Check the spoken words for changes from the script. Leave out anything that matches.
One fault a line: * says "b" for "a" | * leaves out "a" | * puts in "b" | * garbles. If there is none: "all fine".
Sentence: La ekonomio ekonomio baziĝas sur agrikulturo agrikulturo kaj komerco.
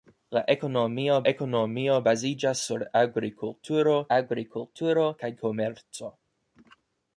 all fine